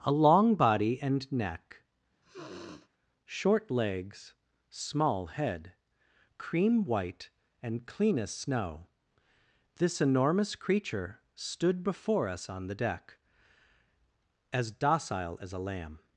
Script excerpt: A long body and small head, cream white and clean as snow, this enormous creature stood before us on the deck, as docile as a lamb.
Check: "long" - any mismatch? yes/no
no